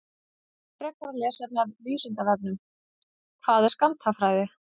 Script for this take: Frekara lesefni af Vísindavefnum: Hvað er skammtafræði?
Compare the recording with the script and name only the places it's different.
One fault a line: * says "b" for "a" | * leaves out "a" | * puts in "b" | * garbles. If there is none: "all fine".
all fine